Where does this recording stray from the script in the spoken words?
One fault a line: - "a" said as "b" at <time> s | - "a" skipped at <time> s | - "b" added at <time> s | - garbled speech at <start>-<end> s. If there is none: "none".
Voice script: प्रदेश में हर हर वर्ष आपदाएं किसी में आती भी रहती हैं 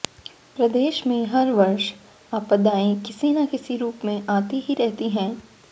- "हर" skipped at 1.5 s
- "न किसी रूप" added at 3.3 s
- "भी" said as "ही" at 4.6 s